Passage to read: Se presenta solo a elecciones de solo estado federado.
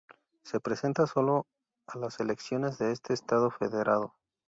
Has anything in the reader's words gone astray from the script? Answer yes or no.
yes